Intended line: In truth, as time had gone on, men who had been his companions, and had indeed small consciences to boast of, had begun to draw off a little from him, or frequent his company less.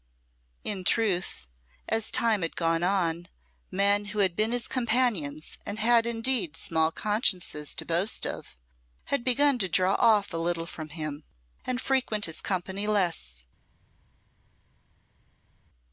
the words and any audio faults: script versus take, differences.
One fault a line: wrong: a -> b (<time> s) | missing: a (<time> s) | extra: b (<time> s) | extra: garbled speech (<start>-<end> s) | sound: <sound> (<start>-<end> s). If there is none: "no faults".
wrong: or -> and (11.7 s)